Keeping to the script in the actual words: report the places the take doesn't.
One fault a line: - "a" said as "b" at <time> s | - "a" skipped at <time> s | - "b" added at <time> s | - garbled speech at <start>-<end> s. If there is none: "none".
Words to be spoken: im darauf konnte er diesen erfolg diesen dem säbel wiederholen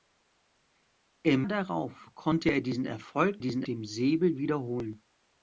none